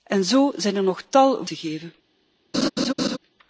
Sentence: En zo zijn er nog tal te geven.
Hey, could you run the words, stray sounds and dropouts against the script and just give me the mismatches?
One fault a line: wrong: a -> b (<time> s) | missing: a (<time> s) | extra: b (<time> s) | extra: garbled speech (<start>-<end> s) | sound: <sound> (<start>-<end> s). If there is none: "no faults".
sound: laugh (2.5-3.2 s)